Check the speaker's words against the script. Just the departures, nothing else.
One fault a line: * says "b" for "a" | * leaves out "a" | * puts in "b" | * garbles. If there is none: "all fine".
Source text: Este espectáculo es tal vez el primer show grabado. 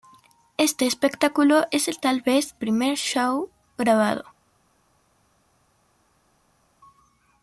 * leaves out "el"